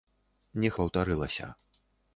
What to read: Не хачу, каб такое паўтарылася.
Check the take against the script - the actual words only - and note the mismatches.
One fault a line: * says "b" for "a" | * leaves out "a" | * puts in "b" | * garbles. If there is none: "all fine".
* leaves out "хачу каб такое"